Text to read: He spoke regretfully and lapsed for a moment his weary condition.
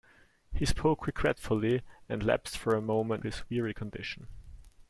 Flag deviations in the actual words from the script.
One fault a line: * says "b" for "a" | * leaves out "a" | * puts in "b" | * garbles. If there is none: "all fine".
all fine